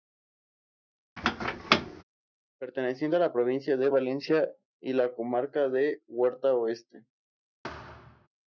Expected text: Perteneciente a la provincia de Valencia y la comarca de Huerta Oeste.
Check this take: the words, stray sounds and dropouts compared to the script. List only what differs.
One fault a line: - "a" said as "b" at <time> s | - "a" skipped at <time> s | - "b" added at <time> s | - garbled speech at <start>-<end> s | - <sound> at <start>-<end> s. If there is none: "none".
- squeak at 1.2-2.0 s
- thud at 7.6-8.3 s